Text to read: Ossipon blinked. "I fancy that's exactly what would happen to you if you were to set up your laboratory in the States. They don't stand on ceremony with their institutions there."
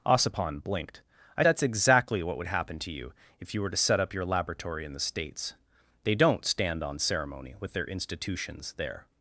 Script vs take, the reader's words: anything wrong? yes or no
yes